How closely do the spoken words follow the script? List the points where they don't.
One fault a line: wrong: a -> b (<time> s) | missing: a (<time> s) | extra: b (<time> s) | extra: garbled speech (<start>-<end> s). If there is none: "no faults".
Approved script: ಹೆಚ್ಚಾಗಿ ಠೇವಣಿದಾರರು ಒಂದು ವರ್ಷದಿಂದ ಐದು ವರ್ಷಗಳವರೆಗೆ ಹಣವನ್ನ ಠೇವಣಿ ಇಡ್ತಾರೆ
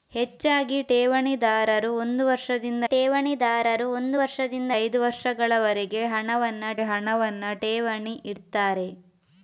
extra: ಠೇವಣಿದಾರರು ಒಂದು ವರ್ಷದಿಂದ (2.9 s)
extra: ಹಣವನ್ನ (6.8 s)